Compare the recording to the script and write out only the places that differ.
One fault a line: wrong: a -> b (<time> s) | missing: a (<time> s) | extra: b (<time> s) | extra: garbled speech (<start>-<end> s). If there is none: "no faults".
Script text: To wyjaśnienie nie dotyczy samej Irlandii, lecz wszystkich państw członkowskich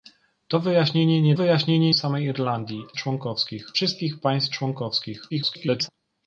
wrong: dotyczy -> wyjaśnienie (1.3 s)
wrong: lecz -> członkowskich (3.0 s)
extra: garbled speech (5.3-5.9 s)